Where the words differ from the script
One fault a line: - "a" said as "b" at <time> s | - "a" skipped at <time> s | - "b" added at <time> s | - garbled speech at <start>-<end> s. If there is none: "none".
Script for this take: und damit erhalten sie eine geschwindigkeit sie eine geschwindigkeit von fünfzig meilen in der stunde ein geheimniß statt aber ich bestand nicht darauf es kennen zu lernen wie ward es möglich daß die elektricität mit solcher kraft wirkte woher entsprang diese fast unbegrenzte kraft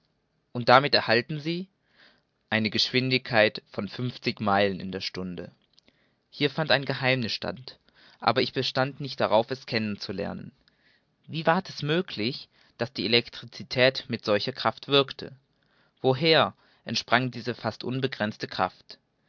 - "sie eine geschwindigkeit" skipped at 3.6 s
- "hier fand" added at 6.3 s